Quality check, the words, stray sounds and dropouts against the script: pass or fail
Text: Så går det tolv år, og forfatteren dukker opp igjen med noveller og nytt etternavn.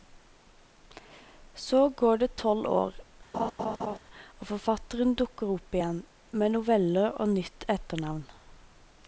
fail